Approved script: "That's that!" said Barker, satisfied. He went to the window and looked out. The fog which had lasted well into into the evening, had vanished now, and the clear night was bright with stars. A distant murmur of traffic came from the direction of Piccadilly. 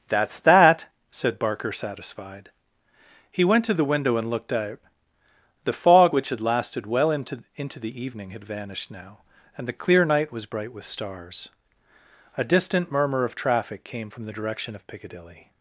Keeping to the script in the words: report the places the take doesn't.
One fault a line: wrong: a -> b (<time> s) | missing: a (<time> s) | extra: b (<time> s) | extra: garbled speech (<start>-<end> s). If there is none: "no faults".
no faults